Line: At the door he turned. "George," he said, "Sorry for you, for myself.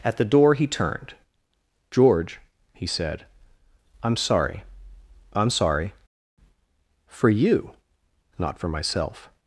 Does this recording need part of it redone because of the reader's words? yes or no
yes